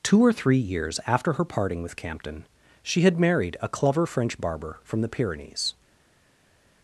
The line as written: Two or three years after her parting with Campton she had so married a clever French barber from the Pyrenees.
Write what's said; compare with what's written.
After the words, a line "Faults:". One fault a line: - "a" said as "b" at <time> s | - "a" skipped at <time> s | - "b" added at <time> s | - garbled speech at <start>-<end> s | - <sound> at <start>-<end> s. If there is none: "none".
Two or three years after her parting with Campton she had married a clever French barber from the Pyrenees.
Faults:
- "so" skipped at 3.2 s